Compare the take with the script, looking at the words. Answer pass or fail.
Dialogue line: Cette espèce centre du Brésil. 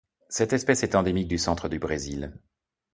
fail